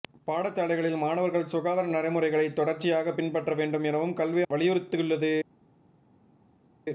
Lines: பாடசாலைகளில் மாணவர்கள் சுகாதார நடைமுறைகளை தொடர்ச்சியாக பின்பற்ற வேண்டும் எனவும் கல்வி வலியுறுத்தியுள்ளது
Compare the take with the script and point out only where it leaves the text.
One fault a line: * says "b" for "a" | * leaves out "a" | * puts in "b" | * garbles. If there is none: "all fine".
all fine